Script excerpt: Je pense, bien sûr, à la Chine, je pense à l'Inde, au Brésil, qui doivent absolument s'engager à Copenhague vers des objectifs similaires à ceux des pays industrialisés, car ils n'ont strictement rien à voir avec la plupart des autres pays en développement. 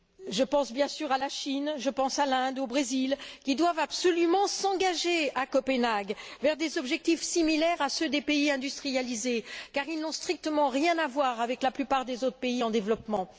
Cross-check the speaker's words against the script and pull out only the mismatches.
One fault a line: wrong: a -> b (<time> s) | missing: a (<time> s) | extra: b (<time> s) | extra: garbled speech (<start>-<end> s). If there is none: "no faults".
no faults